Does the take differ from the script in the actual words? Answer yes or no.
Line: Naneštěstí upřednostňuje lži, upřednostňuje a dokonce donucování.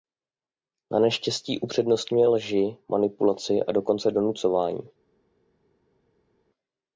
yes